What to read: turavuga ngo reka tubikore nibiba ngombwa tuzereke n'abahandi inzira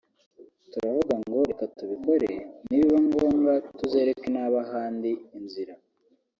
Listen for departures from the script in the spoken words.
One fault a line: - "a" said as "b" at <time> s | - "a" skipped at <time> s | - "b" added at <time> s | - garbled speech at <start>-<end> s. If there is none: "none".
none